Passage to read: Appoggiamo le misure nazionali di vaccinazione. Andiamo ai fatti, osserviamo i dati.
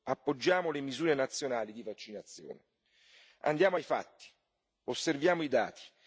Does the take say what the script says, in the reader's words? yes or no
yes